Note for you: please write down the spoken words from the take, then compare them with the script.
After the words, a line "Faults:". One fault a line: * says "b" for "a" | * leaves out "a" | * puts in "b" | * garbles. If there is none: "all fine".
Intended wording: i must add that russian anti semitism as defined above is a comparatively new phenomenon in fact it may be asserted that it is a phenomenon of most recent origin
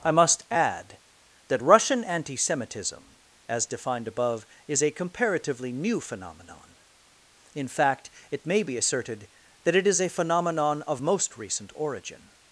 i must add that russian anti semitism as defined above is a comparatively new phenomenon in fact it may be asserted that it is a phenomenon of most recent origin
Faults:
all fine